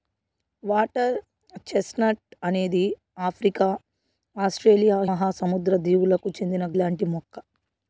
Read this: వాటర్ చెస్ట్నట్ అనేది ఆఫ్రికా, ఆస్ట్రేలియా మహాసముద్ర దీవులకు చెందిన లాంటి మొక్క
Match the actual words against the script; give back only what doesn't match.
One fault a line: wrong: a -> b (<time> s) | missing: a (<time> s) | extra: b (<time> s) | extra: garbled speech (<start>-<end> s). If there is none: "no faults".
no faults